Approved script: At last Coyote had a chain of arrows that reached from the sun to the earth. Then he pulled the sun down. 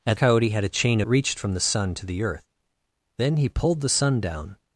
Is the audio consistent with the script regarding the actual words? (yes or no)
no